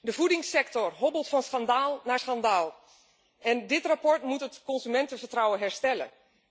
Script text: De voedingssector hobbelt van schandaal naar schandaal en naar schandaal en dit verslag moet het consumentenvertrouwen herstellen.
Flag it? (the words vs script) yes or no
yes